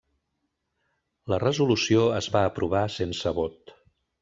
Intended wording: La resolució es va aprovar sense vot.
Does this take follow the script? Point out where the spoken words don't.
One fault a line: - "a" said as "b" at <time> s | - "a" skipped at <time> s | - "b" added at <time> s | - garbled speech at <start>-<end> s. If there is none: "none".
none